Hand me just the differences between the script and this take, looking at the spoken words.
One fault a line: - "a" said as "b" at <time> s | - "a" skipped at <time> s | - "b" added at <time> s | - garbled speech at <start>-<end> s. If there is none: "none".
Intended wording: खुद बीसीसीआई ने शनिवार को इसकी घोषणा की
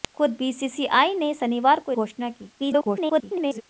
- "इसकी" skipped at 1.9 s
- garbled speech at 2.6-3.6 s